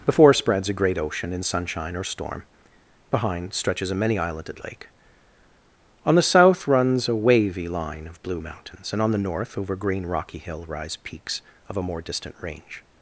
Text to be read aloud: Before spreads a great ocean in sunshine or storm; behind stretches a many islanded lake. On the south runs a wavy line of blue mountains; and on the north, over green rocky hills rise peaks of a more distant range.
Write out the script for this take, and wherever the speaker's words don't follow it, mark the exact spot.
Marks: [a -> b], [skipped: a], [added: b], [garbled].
Before spreads a great ocean in sunshine or storm; behind stretches a many islanded lake. On the south runs a wavy line of blue mountains; and on the north, over green rocky [hills -> hill] rise peaks of a more distant range.